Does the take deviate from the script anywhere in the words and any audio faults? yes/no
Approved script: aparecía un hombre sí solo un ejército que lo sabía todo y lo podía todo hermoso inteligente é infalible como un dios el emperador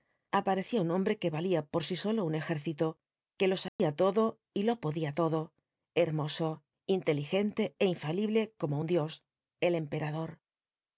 yes